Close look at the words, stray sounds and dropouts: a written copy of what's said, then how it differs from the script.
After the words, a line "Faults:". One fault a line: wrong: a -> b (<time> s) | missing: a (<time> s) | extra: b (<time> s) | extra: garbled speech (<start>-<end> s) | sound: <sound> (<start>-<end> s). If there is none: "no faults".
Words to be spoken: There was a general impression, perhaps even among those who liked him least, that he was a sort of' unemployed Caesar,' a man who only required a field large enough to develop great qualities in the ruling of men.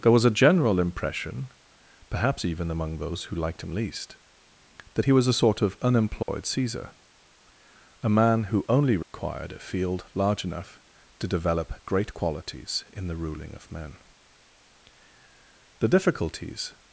There was a general impression, perhaps even among those who liked him least, that he was a sort of' unemployed Caesar,' a man who only required a field large enough to develop great qualities in the ruling of men. The difficulties
Faults:
sound: dropout (6.2-6.3 s)
sound: dropout (9.0-9.1 s)
extra: The difficulties (15.8 s)